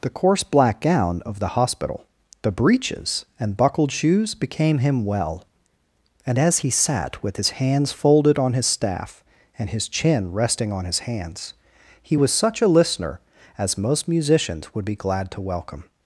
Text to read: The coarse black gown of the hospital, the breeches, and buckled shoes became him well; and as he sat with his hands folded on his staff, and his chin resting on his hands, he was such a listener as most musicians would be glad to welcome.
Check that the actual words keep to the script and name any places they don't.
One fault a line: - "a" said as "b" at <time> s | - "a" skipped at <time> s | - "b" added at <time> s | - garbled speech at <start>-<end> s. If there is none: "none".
none